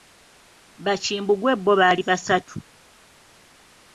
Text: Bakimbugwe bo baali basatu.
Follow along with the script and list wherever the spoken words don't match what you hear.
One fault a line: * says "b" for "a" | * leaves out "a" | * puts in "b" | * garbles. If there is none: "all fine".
all fine